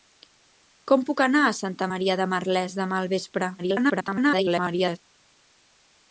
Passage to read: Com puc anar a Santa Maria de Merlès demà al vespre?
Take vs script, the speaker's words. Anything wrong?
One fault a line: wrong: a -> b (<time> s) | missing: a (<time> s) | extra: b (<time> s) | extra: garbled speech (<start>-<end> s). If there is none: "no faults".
extra: garbled speech (3.6-5.0 s)